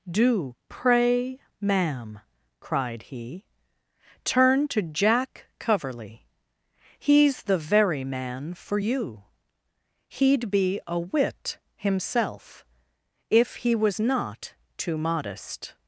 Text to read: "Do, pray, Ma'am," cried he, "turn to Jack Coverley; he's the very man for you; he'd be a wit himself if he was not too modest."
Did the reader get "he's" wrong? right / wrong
right